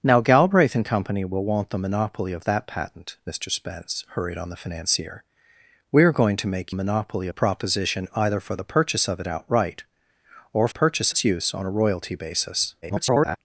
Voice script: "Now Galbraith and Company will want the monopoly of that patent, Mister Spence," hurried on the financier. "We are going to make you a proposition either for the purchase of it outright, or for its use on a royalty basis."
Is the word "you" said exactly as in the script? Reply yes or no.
no